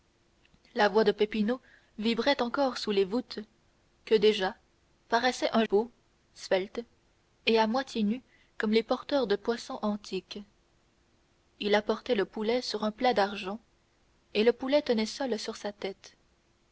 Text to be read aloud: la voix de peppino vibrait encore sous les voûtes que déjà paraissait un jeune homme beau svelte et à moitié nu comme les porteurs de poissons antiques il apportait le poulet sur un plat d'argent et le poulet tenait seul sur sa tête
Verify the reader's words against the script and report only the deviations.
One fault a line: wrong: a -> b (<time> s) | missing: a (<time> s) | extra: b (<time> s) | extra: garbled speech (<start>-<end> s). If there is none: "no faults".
missing: jeune homme (5.6 s)